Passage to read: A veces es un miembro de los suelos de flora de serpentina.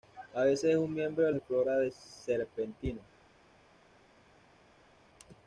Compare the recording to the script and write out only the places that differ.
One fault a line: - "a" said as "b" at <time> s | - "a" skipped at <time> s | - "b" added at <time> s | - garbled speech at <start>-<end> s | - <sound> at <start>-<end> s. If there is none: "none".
- "los suelos" skipped at 1.3 s